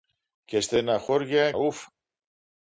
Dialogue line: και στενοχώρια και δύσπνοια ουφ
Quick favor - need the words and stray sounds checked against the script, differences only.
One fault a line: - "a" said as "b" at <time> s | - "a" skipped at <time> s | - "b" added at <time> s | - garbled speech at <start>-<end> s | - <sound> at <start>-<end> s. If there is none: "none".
- "και δύσπνοια" skipped at 1.5 s